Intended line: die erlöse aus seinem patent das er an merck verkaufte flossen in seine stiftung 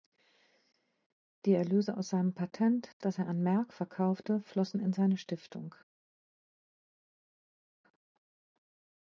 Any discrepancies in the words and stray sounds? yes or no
no